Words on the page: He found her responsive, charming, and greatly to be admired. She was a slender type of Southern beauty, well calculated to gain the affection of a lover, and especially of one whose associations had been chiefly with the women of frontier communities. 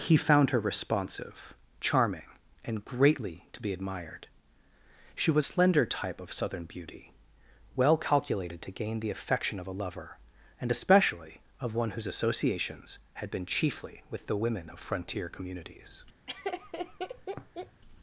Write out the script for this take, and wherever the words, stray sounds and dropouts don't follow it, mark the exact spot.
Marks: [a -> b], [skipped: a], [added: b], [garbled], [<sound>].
He found her responsive, charming, and greatly to be admired. She was [skipped: a] slender type of Southern beauty, well calculated to gain the affection of a lover, and especially of one whose associations had been chiefly with the women of frontier communities. [laugh]